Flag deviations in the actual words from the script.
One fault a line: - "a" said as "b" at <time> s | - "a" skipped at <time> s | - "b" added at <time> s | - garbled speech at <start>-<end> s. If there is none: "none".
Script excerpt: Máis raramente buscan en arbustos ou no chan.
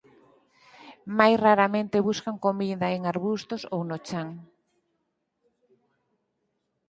- "comida" added at 2.5 s